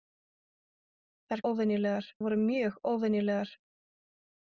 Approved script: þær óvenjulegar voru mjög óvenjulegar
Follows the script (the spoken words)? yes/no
yes